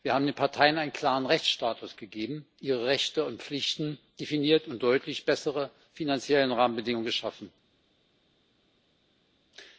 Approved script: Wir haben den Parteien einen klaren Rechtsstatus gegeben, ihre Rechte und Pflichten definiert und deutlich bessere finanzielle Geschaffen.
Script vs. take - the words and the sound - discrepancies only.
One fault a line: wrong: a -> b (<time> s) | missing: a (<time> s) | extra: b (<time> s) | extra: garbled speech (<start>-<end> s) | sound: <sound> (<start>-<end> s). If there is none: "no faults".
extra: Rahmenbedingungen (6.6 s)